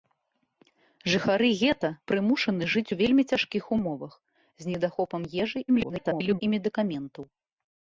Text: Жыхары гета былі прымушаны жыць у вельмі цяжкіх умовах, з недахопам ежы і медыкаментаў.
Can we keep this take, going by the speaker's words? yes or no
no